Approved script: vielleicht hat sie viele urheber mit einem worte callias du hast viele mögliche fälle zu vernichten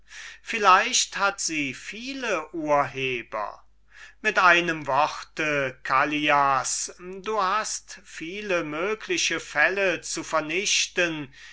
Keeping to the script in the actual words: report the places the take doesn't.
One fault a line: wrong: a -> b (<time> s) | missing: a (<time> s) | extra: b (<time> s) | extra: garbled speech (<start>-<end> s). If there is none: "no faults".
no faults